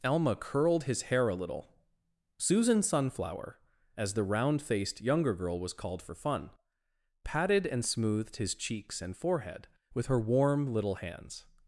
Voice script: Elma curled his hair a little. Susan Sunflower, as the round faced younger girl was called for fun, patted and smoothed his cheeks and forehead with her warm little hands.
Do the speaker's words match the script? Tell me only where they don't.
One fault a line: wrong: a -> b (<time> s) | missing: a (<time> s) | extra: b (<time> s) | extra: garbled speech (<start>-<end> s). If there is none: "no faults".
no faults